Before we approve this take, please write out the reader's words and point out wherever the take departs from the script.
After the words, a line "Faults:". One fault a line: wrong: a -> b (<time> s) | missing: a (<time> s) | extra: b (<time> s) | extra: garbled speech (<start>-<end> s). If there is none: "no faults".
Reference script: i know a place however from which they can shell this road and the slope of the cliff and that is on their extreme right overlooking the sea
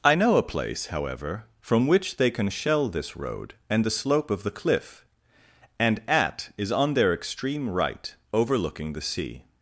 i know a place however from which they can shell this road and the slope of the cliff and at is on their extreme right overlooking the sea
Faults:
wrong: that -> at (6.1 s)